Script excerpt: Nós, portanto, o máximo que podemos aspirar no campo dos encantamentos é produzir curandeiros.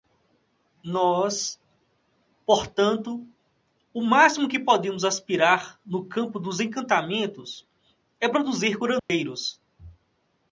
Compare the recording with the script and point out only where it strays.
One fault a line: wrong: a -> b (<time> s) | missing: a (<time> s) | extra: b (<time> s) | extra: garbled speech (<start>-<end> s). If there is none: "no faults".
no faults